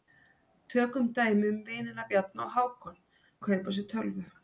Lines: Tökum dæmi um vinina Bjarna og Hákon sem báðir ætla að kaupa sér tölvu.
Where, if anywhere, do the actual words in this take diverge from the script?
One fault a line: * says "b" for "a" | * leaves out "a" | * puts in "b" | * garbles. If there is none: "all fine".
* leaves out "sem báðir ætla"